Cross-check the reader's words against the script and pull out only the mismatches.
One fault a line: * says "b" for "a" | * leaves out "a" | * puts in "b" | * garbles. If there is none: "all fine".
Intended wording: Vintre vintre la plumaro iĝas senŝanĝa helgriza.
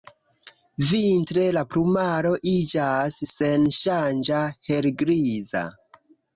* leaves out "vintre"